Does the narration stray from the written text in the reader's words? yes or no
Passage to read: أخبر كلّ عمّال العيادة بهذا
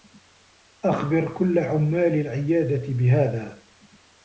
no